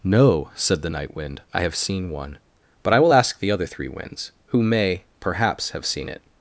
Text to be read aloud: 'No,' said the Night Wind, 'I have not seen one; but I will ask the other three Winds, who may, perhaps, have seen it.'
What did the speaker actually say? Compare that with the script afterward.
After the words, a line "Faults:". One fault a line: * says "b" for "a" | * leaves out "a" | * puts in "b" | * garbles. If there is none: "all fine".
'No,' said the Night Wind, 'I have seen one; but I will ask the other three Winds, who may, perhaps, have seen it.'
Faults:
* leaves out "not"